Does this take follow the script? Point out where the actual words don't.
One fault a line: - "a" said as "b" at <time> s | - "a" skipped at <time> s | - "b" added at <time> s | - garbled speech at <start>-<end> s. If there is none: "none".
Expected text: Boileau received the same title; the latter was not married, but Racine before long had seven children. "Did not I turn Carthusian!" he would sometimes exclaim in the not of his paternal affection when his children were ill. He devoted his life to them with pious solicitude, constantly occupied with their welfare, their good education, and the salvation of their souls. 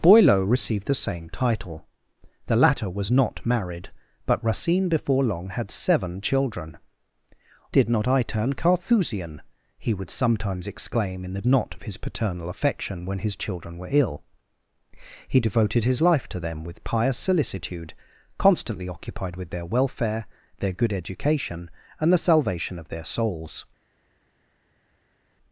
none